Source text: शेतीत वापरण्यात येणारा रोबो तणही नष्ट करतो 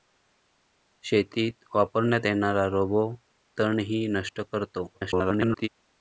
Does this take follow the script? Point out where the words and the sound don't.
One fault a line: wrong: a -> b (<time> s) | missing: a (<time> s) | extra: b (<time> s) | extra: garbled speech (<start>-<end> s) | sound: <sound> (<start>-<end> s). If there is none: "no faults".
extra: garbled speech (4.9-5.7 s)